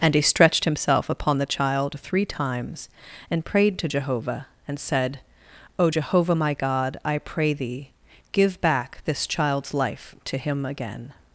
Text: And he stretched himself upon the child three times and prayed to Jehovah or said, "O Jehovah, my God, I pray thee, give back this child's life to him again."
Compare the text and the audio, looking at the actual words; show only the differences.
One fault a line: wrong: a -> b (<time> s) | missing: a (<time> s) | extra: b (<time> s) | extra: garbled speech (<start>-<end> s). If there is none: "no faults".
wrong: or -> and (4.7 s)